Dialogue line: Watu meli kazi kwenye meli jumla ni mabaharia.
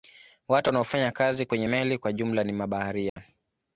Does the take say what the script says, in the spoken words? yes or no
no